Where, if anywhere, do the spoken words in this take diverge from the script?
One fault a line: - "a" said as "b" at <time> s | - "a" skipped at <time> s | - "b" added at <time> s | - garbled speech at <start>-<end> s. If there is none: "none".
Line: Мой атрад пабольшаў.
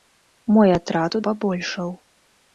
none